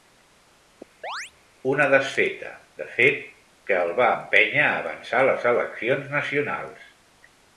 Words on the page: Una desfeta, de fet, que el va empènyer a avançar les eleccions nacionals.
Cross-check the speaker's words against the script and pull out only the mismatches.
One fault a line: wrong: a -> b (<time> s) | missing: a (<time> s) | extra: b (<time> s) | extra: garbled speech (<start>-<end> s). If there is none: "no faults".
no faults